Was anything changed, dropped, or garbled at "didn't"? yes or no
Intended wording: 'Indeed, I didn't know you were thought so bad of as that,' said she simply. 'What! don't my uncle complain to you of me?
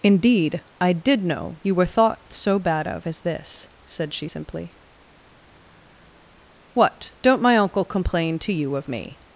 yes